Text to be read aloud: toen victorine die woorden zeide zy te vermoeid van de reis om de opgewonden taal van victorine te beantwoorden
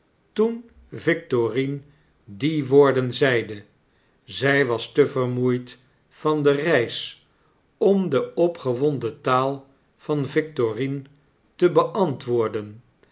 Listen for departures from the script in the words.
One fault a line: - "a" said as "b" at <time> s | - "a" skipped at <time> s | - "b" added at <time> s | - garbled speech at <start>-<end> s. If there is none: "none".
- "was" added at 4.6 s